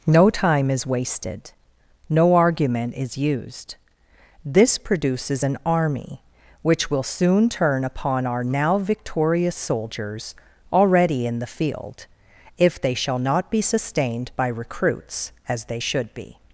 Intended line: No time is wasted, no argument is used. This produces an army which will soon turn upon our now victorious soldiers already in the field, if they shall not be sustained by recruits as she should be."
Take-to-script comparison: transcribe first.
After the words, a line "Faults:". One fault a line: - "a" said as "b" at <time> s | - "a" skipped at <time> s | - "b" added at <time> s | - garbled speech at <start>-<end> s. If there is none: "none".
No time is wasted, no argument is used. This produces an army which will soon turn upon our now victorious soldiers already in the field, if they shall not be sustained by recruits as they should be."
Faults:
- "she" said as "they" at 15.6 s